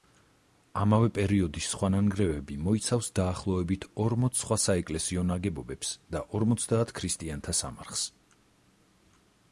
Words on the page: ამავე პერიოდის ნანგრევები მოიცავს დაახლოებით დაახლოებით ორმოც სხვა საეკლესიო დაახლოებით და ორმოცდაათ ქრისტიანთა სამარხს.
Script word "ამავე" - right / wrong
right